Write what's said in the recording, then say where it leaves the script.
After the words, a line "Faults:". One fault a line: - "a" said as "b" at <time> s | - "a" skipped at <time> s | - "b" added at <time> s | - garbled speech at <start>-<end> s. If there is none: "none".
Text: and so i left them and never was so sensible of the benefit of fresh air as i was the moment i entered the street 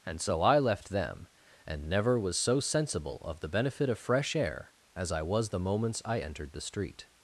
and so i left them and never was so sensible of the benefit of fresh air as i was the moments i entered the street
Faults:
- "moment" said as "moments" at 5.6 s